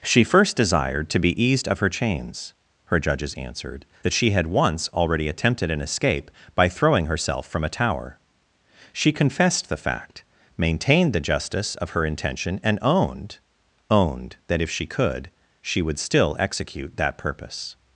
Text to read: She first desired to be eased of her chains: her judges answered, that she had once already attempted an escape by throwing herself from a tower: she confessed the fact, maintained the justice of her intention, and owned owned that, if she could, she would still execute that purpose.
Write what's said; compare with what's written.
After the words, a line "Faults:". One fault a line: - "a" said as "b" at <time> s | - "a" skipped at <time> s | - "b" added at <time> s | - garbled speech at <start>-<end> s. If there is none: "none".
She first desired to be eased of her chains: her judges answered, that she had once already attempted an escape by throwing herself from a tower: she confessed the fact, maintained the justice of her intention, and owned owned that, if she could, she would still execute that purpose.
Faults:
none